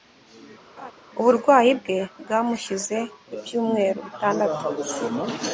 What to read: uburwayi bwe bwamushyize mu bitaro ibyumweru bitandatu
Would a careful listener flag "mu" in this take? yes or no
yes